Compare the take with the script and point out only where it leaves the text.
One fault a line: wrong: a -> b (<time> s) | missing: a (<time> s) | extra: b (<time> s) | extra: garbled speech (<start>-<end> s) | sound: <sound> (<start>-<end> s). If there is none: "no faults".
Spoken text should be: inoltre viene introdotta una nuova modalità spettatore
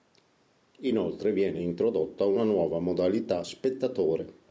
no faults